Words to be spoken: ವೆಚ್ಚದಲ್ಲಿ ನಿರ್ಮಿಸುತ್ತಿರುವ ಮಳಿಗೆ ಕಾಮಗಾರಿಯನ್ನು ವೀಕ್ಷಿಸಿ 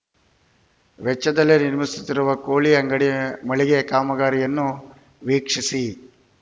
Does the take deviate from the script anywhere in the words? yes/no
yes